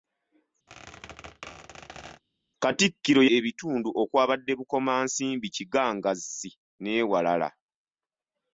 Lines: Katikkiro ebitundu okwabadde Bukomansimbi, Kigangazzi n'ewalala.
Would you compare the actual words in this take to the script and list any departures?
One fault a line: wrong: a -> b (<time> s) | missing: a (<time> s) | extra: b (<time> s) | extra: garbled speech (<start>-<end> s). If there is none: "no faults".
no faults